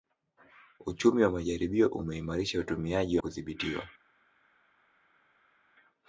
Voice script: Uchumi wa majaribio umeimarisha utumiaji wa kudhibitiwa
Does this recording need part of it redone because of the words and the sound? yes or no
no